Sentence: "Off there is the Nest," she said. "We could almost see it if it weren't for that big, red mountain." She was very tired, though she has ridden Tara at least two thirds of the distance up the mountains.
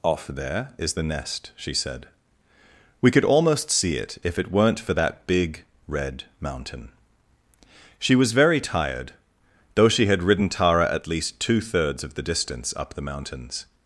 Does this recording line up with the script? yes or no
no